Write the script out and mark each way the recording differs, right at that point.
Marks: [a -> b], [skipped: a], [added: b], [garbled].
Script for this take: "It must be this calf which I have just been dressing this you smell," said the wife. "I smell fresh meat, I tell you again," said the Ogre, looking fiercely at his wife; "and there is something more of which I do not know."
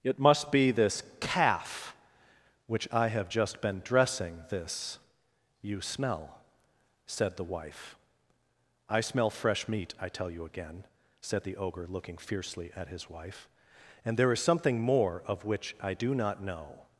"It must be this calf which I have just been dressing this you smell," said the wife. "I smell fresh meat, I tell you again," said the Ogre, looking fiercely at his wife; "and there is something more of which I do not know."